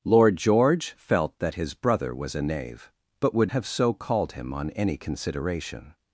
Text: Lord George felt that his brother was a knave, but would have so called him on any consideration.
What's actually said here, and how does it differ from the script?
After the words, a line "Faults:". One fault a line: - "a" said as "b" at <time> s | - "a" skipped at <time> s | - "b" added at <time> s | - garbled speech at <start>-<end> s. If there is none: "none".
Lord George felt that his brother was a knave, but would have so called him on any consideration.
Faults:
none